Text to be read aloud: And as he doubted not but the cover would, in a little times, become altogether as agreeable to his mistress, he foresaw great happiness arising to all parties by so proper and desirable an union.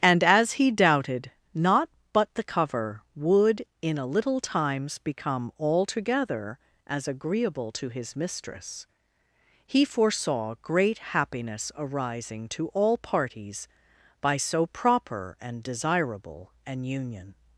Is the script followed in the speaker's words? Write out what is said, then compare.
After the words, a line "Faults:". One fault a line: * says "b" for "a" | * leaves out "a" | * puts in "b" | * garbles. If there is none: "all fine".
And as he doubted not but the cover would, in a little times, become altogether as agreeable to his mistress, he foresaw great happiness arising to all parties by so proper and desirable an union.
Faults:
all fine